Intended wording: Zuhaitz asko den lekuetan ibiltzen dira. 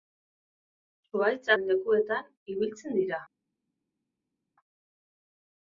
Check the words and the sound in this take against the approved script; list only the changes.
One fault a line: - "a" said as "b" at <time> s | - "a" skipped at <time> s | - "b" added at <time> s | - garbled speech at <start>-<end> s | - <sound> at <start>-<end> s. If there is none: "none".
- "asko" skipped at 1.5 s